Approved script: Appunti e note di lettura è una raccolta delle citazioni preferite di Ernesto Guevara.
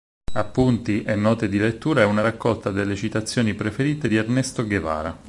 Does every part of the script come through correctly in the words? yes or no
yes